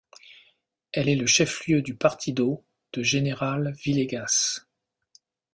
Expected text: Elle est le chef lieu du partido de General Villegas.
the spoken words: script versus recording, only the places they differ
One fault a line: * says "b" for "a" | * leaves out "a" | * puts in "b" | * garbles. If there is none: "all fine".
all fine